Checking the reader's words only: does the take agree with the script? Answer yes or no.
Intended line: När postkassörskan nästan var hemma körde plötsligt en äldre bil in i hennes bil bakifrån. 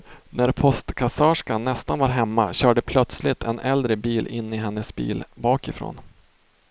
yes